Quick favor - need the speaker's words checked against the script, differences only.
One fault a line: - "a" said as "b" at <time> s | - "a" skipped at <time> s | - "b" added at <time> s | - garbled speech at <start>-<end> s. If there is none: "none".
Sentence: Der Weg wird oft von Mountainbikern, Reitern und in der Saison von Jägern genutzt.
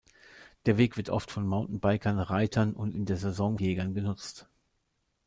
- "von" skipped at 3.6 s